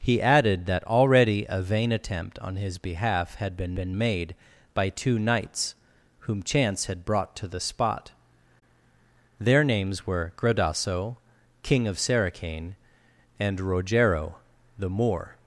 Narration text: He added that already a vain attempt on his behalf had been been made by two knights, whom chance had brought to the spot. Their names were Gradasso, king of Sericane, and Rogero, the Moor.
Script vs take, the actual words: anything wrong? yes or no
no